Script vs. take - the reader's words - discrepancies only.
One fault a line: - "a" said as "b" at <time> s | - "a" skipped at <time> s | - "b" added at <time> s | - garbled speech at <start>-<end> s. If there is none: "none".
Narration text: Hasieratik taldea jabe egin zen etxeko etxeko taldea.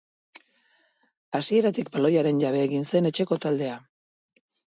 - "taldea" said as "baloiaren" at 2.0 s
- "etxeko" skipped at 3.4 s